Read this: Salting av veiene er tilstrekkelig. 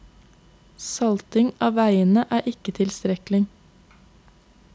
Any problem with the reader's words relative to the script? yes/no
yes